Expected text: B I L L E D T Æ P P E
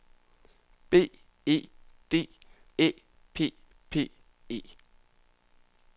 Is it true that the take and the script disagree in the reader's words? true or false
true